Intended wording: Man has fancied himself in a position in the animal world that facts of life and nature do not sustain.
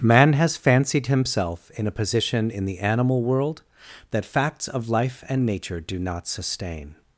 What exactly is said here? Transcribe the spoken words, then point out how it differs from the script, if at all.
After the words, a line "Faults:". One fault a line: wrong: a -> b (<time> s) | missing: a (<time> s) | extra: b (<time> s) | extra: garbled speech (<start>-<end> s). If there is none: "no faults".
Man has fancied himself in a position in the animal world that facts of life and nature do not sustain.
Faults:
no faults